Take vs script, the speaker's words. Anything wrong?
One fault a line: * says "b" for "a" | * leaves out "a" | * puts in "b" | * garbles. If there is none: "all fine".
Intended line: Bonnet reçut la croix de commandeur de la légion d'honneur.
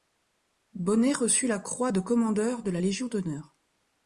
all fine